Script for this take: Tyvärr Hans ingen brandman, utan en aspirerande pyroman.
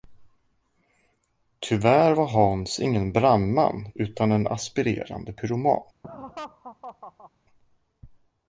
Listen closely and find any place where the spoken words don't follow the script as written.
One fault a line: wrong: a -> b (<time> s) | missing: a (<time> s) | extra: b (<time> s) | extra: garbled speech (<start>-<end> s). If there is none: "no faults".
extra: var (2.1 s)